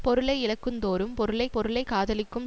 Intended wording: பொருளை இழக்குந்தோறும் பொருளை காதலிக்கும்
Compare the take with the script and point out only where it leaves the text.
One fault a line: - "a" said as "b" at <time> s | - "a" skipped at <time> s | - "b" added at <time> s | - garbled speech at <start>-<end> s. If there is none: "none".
- "பொருளை" added at 1.5 s